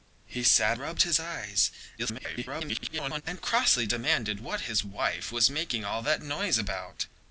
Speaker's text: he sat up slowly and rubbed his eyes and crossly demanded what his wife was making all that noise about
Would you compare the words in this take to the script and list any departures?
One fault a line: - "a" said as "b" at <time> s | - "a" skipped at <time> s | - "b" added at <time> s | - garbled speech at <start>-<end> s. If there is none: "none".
- "up slowly and" skipped at 0.8 s
- garbled speech at 2.0-3.2 s